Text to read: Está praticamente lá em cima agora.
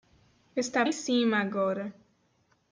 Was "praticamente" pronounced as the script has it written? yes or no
no